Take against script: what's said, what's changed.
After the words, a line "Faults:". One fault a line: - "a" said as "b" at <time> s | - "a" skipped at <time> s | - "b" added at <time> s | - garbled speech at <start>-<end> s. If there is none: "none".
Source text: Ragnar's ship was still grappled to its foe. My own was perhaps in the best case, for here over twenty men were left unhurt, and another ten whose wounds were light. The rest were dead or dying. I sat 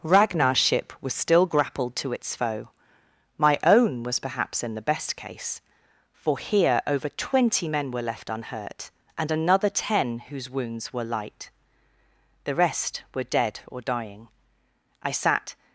Ragnar's ship was still grappled to its foe. My own was perhaps in the best case, for here over twenty men were left unhurt, and another ten whose wounds were light. The rest were dead or dying. I sat
Faults:
none